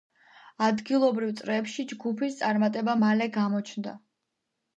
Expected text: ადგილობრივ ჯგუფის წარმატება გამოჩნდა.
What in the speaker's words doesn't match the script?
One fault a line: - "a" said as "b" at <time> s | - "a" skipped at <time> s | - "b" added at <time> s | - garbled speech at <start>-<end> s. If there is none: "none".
- "წრეებში" added at 1.4 s
- "მალე" added at 3.1 s